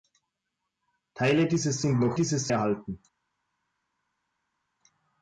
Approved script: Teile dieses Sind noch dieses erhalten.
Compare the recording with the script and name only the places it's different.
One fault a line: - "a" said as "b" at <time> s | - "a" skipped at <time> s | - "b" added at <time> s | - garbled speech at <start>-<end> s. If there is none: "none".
none